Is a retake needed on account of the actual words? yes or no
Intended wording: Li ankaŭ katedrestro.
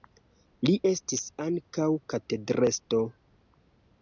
yes